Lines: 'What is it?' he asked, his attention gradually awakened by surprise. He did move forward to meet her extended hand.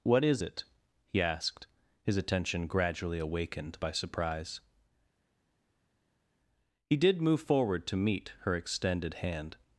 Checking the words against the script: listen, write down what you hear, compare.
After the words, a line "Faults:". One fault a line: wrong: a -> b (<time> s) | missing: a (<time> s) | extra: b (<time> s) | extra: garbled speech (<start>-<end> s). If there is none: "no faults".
'What is it?' he asked, his attention gradually awakened by surprise. He did move forward to meet her extended hand.
Faults:
no faults